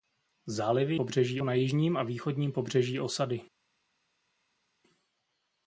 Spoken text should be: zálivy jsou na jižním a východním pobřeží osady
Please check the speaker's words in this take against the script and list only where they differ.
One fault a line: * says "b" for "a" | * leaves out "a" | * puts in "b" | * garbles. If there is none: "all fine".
* says "pobřeží" for "jsou"